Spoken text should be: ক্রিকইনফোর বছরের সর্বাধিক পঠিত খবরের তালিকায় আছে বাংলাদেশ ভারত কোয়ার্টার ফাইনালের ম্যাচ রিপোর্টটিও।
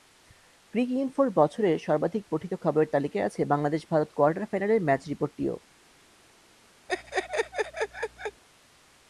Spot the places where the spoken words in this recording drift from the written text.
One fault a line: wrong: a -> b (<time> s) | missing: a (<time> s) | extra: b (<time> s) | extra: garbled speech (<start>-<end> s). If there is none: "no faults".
no faults